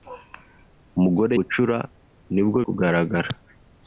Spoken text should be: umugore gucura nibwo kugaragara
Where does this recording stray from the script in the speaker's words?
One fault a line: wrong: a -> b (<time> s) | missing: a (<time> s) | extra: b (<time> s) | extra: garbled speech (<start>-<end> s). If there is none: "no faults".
no faults